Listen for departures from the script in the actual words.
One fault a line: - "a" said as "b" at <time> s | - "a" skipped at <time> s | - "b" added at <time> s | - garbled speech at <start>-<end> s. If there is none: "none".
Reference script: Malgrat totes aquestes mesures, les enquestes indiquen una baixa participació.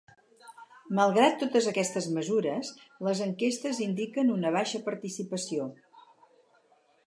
none